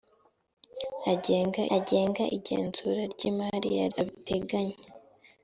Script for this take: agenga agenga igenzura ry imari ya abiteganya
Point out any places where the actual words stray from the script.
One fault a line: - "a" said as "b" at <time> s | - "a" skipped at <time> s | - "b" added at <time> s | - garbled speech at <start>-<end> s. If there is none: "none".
none